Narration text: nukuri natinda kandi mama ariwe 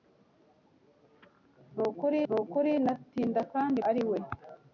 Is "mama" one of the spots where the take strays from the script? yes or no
yes